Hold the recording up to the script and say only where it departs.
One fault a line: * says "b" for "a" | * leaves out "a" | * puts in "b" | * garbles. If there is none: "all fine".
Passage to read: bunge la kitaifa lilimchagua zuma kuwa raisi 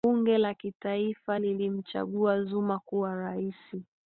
all fine